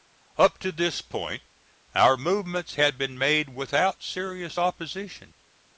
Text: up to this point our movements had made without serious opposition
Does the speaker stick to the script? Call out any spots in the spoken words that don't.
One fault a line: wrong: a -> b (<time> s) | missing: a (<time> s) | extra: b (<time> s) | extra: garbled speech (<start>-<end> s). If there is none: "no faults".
extra: been (3.0 s)